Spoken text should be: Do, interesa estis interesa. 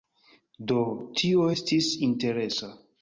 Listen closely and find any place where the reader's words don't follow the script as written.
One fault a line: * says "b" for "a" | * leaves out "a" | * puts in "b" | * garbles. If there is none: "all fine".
* says "tio" for "interesa"